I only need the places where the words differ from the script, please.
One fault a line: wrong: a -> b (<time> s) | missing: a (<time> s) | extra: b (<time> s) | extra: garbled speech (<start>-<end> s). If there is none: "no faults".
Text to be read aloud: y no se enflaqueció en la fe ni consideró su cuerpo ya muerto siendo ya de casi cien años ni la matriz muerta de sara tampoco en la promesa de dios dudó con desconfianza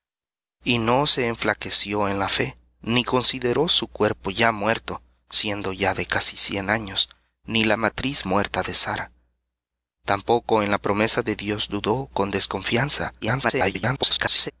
extra: garbled speech (13.2-14.5 s)